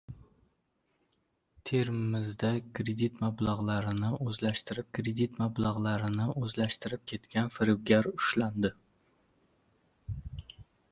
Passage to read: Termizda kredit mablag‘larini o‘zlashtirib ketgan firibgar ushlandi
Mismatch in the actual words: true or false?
true